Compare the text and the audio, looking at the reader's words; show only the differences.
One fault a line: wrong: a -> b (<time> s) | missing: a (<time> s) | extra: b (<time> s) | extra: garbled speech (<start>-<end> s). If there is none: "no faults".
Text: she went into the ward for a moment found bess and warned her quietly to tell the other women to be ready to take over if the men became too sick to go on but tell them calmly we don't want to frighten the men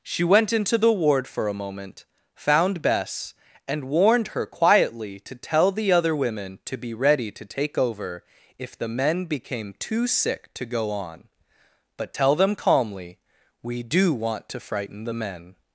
wrong: don't -> do (13.8 s)